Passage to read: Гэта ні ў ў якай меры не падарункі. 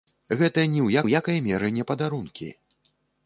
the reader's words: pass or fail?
pass